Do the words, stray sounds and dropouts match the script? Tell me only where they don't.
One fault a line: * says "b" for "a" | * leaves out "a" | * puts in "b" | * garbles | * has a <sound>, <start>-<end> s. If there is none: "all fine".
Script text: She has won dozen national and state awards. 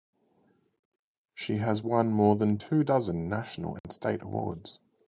* puts in "more than two"
* has a dropout, 3.8-3.8 s